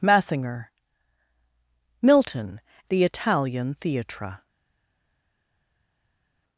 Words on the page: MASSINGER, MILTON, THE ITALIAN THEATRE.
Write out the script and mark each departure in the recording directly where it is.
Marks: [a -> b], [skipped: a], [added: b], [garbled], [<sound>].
MASSINGER, MILTON, THE ITALIAN THEATRE.